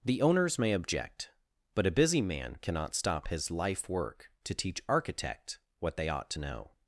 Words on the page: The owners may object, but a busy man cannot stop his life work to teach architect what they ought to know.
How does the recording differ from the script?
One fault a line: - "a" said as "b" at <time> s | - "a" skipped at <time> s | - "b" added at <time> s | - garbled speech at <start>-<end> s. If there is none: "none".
none